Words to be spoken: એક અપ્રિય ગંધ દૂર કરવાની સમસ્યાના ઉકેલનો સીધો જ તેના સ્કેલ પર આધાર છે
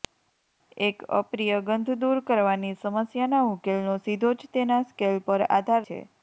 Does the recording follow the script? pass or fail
pass